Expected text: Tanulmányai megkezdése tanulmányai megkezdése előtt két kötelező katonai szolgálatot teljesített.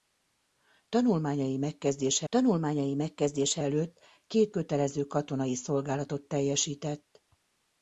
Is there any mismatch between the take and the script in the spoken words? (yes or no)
no